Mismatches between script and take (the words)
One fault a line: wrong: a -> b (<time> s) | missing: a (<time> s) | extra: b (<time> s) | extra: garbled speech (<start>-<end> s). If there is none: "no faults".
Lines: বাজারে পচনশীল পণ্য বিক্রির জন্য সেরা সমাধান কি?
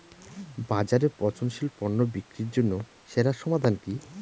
no faults